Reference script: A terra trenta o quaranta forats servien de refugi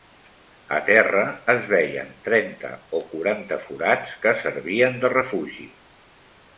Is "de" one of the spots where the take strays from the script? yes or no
no